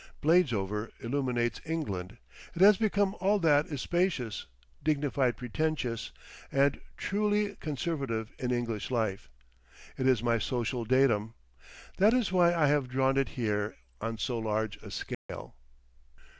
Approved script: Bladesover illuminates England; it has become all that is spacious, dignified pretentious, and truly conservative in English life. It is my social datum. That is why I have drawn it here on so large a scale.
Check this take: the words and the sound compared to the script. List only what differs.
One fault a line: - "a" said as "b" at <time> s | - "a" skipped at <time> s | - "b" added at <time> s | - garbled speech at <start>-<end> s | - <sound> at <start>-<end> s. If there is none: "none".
- dropout at 15.1-15.3 s